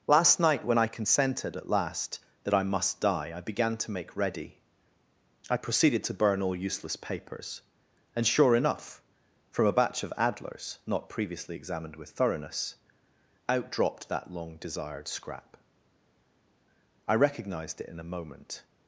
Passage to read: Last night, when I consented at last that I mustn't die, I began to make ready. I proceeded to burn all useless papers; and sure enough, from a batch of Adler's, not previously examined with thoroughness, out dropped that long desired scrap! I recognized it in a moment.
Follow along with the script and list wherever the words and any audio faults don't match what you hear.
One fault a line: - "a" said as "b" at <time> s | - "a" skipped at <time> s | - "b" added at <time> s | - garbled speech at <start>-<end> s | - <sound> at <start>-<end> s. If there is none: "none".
- "mustn't" said as "must" at 2.6 s